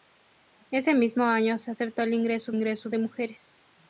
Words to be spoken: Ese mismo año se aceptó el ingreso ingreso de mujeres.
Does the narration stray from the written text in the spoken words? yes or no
no